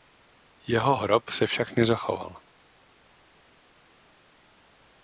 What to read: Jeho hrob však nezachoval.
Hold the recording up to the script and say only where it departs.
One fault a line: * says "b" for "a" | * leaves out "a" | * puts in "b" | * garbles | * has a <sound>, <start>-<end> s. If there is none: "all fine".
* puts in "se"